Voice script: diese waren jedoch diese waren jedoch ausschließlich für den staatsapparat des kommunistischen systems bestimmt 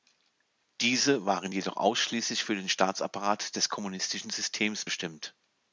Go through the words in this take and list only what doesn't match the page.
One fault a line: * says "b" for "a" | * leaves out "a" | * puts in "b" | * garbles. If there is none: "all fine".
* leaves out "diese waren jedoch"